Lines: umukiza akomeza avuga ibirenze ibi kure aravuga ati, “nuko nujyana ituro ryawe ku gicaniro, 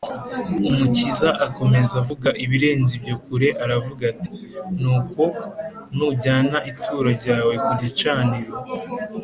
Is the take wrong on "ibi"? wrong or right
wrong